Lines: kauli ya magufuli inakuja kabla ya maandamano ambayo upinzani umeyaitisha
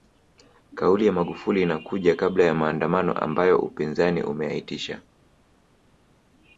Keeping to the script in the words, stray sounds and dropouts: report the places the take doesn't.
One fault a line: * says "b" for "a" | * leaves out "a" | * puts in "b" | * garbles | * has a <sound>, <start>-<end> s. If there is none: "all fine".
all fine